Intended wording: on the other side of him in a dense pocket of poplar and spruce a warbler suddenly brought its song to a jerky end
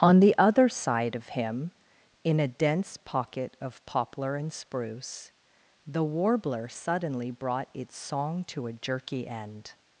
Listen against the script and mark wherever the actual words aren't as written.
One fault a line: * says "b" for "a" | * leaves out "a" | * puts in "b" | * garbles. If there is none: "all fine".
* says "the" for "a"